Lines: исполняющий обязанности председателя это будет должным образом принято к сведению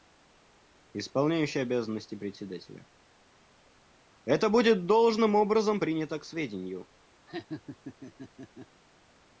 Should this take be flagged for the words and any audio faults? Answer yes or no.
yes